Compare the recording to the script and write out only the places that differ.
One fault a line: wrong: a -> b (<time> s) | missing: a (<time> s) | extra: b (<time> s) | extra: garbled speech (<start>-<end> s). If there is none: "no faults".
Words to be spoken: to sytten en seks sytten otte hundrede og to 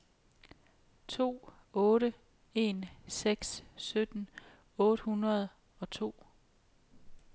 wrong: sytten -> otte (1.7 s)